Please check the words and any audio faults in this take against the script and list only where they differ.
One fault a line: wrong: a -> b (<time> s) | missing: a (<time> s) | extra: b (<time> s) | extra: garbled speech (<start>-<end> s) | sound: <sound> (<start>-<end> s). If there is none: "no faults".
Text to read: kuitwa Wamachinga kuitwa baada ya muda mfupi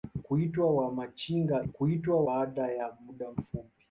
no faults